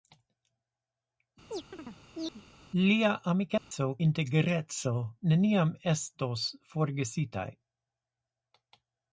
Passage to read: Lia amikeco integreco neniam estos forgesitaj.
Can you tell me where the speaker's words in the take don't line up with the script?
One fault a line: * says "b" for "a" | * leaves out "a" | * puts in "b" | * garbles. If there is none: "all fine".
all fine